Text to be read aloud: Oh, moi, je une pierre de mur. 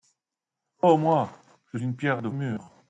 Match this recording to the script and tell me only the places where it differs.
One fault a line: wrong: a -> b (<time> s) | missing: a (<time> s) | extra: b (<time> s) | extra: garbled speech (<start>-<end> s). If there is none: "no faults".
no faults